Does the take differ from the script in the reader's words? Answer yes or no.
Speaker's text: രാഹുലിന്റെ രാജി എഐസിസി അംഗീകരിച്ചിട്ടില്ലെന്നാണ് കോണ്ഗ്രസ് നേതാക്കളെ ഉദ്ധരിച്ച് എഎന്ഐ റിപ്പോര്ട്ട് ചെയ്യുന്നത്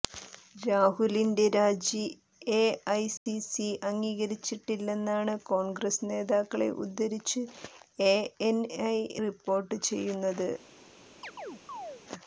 no